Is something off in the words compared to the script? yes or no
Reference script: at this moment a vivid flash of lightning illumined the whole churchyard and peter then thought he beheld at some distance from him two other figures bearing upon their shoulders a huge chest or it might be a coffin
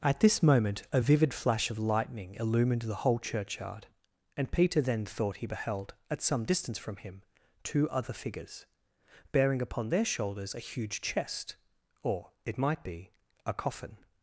no